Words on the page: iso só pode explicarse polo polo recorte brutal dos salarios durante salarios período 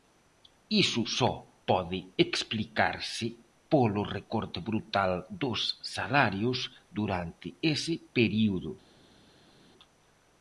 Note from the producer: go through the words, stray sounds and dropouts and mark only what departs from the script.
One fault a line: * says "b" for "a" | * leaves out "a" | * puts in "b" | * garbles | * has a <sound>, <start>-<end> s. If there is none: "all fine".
* leaves out "polo"
* says "ese" for "salarios"